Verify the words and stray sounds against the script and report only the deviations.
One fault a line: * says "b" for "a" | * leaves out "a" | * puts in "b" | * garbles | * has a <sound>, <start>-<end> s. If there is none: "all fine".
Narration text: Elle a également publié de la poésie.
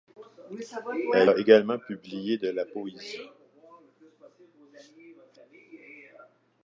all fine